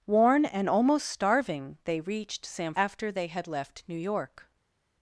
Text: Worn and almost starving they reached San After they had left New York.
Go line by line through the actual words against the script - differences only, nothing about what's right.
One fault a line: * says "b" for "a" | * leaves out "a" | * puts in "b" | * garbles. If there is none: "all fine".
all fine